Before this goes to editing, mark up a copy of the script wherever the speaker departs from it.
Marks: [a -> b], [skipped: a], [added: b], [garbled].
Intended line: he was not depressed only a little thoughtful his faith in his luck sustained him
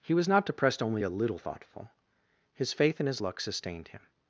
he was not depressed only a little thoughtful his faith in his luck sustained him